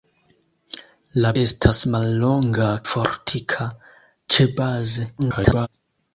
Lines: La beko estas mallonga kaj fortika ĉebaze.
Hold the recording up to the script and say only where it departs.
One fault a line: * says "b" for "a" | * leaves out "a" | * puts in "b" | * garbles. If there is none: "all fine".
* leaves out "beko"
* leaves out "kaj"
* garbles